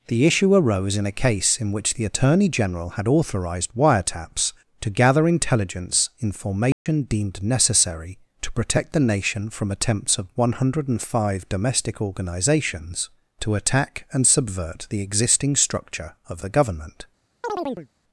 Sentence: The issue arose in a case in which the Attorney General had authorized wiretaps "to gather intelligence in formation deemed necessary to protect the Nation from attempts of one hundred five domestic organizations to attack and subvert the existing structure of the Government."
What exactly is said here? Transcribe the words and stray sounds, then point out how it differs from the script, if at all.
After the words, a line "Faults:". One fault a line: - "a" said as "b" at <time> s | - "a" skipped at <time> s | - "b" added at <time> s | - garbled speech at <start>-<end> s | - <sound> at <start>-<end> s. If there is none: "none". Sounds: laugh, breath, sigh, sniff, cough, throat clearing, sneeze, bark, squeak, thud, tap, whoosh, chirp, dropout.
The issue arose in a case in which the Attorney General had authorized wiretaps "to gather intelligence in formation deemed necessary to protect the Nation from attempts of one hundred five domestic organizations to attack and subvert the existing structure of the Government."
Faults:
- dropout at 6.7-6.9 s
- chirp at 17.4-17.9 s